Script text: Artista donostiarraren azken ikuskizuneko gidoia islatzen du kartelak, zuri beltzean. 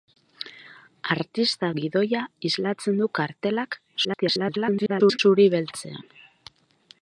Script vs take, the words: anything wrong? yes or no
yes